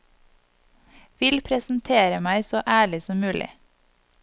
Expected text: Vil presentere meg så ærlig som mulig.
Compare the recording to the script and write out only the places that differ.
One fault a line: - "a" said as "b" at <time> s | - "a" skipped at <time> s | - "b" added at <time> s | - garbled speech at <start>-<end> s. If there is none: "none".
none